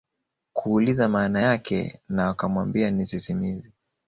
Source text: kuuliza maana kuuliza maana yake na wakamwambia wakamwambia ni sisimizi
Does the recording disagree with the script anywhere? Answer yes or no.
yes